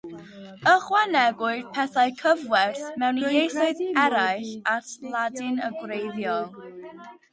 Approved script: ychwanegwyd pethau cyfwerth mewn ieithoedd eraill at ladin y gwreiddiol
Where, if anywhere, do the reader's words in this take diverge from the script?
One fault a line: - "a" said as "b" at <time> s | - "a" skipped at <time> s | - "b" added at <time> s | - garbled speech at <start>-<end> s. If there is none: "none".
none